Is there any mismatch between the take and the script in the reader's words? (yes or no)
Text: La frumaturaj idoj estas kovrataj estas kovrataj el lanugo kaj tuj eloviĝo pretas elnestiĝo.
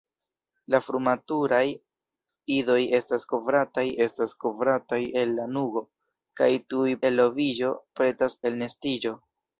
no